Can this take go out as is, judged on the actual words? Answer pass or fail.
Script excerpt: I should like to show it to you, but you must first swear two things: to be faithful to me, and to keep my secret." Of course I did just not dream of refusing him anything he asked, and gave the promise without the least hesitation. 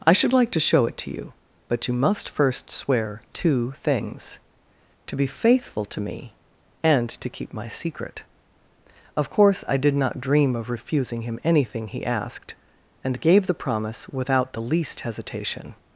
fail